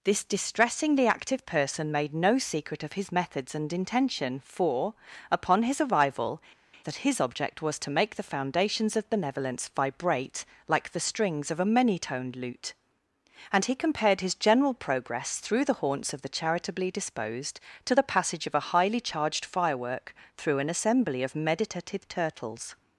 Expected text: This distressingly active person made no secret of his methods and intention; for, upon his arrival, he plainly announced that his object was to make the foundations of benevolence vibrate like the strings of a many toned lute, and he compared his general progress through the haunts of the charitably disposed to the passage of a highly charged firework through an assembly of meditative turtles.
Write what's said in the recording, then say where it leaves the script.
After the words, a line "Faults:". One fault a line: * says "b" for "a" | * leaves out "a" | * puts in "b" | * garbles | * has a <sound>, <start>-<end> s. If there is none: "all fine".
This distressingly active person made no secret of his methods and intention; for, upon his arrival, that his object was to make the foundations of benevolence vibrate like the strings of a many toned lute, and he compared his general progress through the haunts of the charitably disposed to the passage of a highly charged firework through an assembly of meditative turtles.
Faults:
* leaves out "he plainly announced"